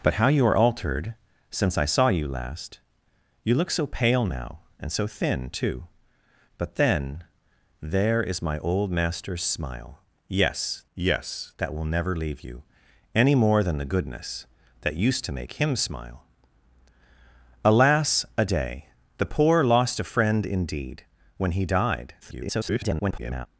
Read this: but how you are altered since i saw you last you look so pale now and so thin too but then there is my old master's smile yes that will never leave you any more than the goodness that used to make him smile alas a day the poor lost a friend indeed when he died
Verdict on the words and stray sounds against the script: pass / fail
fail